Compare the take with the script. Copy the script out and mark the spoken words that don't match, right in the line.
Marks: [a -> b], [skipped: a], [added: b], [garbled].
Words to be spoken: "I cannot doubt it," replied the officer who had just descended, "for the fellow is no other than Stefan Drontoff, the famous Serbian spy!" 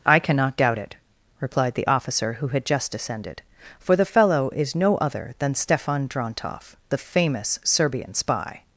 "I cannot doubt it," replied the officer who had just descended, "for the fellow is no other than Stefan Drontoff, the famous Serbian spy!"